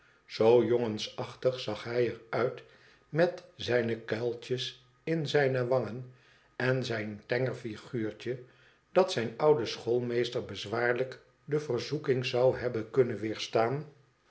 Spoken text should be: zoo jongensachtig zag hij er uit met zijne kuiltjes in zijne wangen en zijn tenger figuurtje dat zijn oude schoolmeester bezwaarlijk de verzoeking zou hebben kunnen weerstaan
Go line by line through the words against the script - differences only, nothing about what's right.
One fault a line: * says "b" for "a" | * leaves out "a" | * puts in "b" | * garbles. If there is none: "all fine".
all fine